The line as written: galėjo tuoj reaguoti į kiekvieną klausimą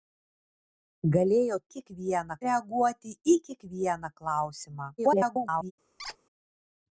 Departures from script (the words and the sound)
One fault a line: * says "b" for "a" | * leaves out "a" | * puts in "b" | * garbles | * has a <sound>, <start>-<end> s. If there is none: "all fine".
* says "kiekvieną" for "tuoj"
* garbles
* has a squeak, 6.0-6.2 s